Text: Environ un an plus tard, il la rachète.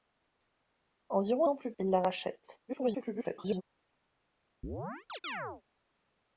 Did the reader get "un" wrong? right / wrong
wrong